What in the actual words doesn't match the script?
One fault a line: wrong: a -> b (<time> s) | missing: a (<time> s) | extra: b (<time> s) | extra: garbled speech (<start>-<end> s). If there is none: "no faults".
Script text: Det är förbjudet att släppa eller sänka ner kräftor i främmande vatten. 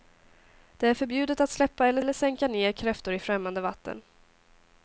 extra: eller (2.0 s)